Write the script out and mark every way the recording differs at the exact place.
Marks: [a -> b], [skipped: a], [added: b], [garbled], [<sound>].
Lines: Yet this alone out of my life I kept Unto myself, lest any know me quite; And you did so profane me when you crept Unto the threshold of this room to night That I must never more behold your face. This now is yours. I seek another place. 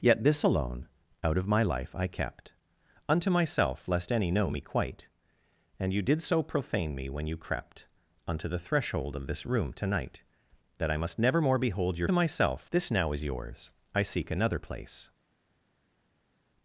Yet this alone out of my life I kept Unto myself, lest any know me quite; And you did so profane me when you crept Unto the threshold of this room to night That I must never more behold your [face. -> myself] This now is yours. I seek another place.